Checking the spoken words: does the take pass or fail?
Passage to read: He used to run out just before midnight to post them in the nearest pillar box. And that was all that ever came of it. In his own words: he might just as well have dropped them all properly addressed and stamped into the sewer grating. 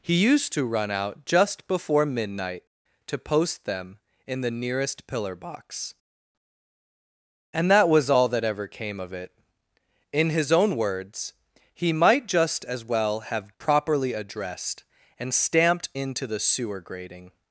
fail